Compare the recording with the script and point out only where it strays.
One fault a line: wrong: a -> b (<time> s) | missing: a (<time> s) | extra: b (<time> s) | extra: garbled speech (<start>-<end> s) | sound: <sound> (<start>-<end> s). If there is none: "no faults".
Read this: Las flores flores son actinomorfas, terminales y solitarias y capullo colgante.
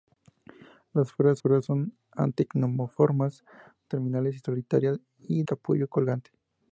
no faults